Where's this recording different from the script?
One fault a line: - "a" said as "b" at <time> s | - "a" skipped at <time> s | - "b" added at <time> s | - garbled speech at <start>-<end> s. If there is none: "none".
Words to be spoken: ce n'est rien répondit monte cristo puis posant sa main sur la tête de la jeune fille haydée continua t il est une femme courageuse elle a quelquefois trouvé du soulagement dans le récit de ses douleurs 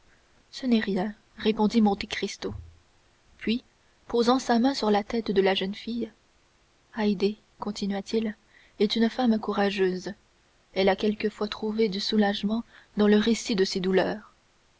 none